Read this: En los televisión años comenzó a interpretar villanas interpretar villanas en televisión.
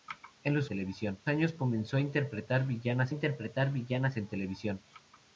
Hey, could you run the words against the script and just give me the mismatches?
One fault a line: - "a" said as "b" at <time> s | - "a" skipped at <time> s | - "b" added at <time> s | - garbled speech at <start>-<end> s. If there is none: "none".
none